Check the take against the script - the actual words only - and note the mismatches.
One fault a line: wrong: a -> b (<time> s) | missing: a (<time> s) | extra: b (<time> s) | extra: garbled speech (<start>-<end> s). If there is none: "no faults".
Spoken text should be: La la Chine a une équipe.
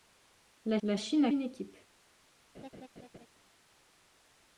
no faults